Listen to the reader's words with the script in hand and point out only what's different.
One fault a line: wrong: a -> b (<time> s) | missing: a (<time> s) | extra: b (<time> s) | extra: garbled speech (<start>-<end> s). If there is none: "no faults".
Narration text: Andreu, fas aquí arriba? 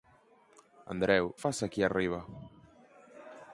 no faults